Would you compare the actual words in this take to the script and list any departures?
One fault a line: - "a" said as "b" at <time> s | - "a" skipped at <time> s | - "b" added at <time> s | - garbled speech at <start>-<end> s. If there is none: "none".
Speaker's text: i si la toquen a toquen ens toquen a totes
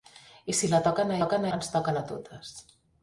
none